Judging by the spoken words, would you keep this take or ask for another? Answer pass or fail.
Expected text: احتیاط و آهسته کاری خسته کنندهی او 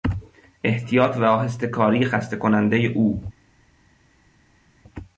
pass